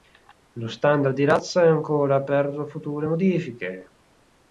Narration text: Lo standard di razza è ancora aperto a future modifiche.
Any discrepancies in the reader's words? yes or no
no